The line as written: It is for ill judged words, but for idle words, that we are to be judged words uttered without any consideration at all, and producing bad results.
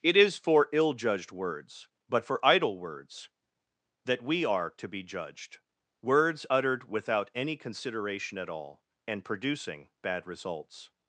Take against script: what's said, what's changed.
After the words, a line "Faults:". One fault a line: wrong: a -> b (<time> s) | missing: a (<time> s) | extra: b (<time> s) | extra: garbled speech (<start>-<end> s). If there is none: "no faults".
It is for ill judged words, but for idle words, that we are to be judged words uttered without any consideration at all, and producing bad results.
Faults:
no faults